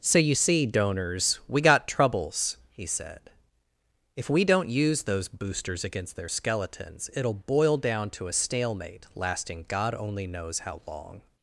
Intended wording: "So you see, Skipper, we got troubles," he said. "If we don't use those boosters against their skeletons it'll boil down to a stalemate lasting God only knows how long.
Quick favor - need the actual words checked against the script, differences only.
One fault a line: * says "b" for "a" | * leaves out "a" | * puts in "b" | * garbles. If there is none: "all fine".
* says "Donors" for "Skipper"